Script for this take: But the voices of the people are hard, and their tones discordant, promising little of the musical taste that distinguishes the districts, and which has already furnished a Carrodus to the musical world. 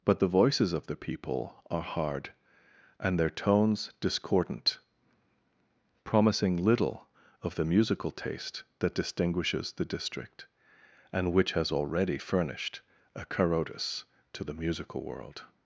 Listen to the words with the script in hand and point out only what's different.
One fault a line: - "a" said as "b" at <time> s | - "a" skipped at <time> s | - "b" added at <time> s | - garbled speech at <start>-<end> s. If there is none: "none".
- "districts" said as "district" at 9.8 s